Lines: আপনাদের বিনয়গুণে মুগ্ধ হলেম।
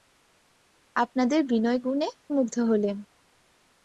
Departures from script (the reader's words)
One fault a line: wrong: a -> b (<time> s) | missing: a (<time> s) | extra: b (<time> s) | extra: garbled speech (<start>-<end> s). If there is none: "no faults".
no faults